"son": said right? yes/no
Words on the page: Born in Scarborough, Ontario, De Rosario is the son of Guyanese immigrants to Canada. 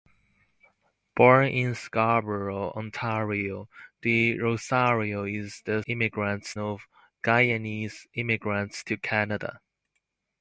no